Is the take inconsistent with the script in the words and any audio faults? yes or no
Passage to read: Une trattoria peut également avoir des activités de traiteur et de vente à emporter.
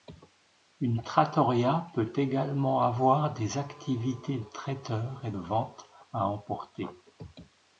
yes